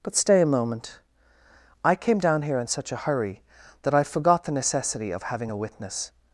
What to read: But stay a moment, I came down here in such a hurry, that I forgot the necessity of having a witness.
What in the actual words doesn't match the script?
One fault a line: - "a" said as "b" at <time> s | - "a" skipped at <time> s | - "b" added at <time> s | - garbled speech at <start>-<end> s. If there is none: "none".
none